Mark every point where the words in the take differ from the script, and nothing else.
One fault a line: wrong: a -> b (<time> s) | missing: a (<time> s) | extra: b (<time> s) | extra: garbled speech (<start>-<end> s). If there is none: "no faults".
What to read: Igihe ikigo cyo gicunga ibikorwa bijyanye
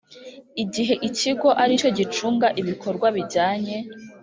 extra: ari (1.6 s)